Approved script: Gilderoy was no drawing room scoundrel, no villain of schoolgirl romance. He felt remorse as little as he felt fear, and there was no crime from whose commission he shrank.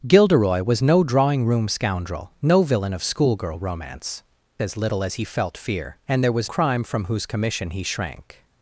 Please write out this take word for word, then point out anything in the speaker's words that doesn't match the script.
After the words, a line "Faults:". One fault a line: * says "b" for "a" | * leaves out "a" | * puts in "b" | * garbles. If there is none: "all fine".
Gilderoy was no drawing room scoundrel, no villain of schoolgirl romance. As little as he felt fear, and there was crime from whose commission he shrank.
Faults:
* leaves out "He felt remorse"
* leaves out "no"